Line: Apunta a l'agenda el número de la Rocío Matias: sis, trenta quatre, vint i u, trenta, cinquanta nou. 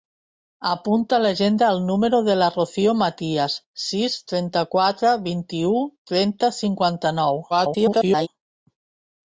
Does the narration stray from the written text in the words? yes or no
yes